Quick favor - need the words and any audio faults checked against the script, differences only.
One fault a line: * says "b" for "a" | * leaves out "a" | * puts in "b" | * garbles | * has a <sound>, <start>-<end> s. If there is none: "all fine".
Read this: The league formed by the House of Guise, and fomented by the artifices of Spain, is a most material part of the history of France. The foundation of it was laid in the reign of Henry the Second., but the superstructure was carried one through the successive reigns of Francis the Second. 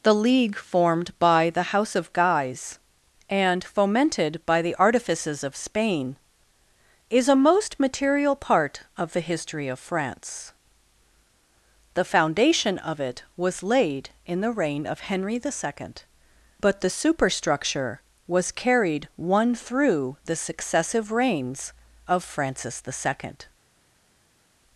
all fine